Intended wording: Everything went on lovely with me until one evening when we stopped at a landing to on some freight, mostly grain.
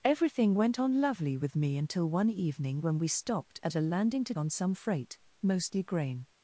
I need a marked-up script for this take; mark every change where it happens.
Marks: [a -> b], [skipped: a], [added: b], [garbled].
Everything went on lovely with me until one evening when we stopped at a landing to on some freight, mostly grain.